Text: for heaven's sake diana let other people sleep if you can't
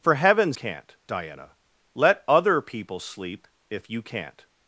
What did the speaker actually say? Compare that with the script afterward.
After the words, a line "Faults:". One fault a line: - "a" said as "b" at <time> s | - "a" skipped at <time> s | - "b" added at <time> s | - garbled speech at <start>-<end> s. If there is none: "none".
for heaven's can't diana let other people sleep if you can't
Faults:
- "sake" said as "can't" at 0.5 s